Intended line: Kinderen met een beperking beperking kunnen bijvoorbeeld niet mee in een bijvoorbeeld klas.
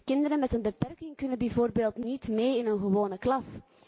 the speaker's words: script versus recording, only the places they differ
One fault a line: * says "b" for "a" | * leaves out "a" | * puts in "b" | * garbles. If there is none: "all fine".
* leaves out "beperking"
* says "gewone" for "bijvoorbeeld"